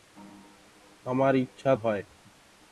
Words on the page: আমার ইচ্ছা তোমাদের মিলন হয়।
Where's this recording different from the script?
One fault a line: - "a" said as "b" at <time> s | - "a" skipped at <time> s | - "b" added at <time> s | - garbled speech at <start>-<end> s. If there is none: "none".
- "তোমাদের মিলন" skipped at 1.7 s